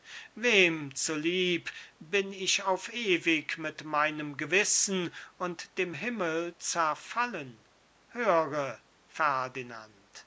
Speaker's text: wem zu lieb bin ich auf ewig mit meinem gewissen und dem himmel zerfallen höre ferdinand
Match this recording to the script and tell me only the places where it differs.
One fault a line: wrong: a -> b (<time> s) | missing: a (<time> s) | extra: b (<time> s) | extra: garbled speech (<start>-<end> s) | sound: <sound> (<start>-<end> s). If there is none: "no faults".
no faults